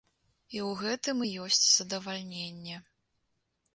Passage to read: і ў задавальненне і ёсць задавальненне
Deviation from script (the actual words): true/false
true